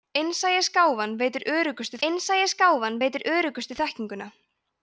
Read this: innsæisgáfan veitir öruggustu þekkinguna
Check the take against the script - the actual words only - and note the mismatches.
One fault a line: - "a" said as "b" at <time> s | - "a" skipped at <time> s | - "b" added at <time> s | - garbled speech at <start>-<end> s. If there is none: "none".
- "innsæisgáfan veitir öruggustu" added at 2.1 s